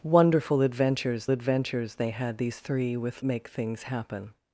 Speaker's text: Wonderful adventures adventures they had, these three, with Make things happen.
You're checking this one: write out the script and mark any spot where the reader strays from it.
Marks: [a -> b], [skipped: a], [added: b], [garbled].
Wonderful adventures adventures they had, these three, with Make things happen.